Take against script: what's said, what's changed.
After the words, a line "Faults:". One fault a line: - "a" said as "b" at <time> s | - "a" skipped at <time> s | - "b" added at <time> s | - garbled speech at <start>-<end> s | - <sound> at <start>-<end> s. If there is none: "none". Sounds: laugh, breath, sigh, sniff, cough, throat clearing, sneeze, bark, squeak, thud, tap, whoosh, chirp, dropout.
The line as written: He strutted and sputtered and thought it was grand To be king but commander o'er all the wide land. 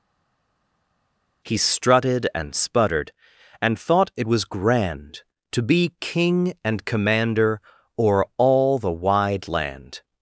He strutted and sputtered and thought it was grand To be king and commander o'er all the wide land.
Faults:
- "but" said as "and" at 6.6 s